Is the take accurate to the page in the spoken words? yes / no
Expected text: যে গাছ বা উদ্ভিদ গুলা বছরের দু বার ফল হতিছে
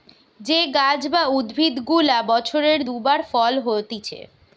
yes